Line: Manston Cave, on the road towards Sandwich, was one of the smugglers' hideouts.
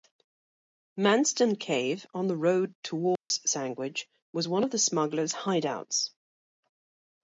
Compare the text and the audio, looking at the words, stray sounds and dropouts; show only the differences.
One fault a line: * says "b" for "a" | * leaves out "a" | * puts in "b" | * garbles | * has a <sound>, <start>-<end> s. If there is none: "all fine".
* has a dropout, 3.2-3.3 s